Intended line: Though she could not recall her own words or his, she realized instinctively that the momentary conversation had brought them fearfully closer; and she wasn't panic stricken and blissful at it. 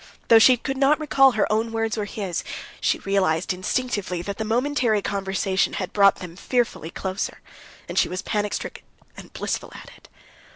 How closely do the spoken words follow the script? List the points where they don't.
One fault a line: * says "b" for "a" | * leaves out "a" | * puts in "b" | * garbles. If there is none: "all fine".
* says "was" for "wasn't"